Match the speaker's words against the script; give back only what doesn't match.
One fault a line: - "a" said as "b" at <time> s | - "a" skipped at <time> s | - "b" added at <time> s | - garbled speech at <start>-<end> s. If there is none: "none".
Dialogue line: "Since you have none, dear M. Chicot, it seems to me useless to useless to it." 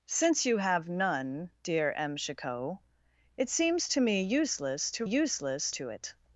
none